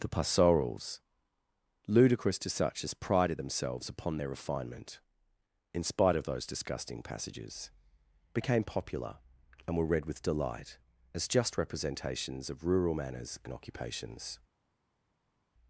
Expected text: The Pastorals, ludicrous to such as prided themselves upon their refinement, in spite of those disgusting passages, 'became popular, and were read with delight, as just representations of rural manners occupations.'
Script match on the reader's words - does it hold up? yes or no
no